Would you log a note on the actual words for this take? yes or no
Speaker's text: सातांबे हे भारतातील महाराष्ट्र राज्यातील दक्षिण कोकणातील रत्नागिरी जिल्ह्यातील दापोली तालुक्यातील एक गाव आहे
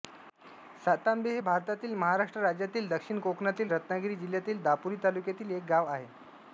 no